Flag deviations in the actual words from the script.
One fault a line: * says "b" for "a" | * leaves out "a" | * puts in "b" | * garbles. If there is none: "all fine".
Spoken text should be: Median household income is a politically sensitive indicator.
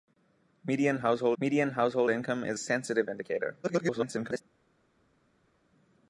* puts in "median household"
* leaves out "a politically"
* garbles